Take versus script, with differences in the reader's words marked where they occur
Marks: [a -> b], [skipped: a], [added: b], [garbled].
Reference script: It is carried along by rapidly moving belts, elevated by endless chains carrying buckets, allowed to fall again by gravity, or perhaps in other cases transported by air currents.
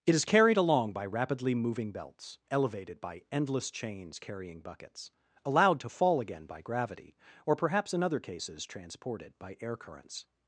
It is carried along by rapidly moving belts, elevated by endless chains carrying buckets, allowed to fall again by gravity, or perhaps in other cases transported by air currents.